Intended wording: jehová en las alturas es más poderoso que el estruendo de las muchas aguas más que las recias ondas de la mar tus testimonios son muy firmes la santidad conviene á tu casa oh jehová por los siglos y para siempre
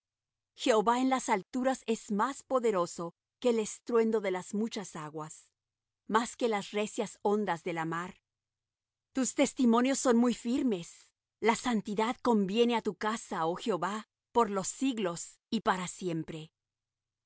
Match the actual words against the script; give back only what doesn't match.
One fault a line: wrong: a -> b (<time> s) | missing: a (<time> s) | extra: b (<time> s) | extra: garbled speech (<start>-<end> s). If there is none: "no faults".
no faults